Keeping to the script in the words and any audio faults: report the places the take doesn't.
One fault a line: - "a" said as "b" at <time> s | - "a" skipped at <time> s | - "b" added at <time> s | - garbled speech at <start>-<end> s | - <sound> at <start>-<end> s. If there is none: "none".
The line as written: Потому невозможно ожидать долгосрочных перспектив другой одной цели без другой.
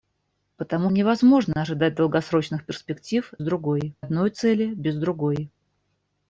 none